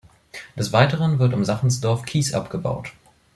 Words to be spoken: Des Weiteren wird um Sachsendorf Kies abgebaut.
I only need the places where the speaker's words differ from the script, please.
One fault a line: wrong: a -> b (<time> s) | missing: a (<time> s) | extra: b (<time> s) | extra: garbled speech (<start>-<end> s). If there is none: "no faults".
no faults